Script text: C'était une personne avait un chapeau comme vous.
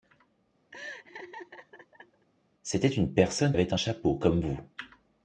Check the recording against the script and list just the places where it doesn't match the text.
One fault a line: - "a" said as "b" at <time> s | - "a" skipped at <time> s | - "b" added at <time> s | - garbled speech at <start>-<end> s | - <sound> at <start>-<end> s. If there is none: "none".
- laugh at 0.7-2.3 s